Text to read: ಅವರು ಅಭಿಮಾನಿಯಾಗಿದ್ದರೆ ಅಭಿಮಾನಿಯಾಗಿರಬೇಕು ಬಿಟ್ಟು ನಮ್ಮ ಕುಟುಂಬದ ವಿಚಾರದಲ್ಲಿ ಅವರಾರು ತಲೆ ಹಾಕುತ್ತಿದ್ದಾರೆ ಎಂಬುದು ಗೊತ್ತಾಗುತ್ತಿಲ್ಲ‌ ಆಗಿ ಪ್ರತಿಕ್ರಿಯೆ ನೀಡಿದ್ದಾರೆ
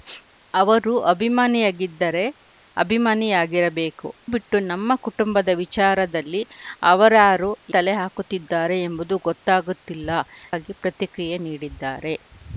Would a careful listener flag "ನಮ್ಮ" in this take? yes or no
no